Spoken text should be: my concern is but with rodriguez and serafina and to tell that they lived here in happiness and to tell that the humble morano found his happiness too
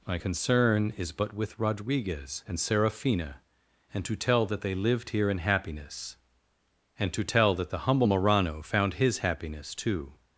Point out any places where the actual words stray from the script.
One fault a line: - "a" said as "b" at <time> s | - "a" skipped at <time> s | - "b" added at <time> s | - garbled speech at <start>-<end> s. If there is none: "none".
none